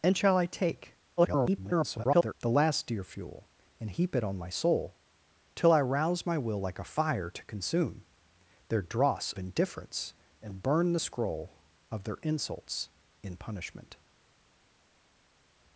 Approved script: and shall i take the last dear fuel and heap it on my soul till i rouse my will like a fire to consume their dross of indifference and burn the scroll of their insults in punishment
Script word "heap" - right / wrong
right